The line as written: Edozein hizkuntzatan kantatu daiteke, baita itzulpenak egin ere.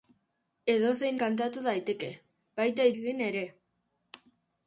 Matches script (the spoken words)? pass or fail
fail